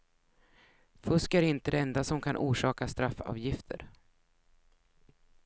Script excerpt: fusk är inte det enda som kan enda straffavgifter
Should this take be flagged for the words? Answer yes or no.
yes